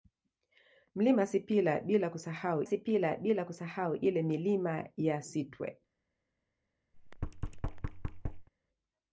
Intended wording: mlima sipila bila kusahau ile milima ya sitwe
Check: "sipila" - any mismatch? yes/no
no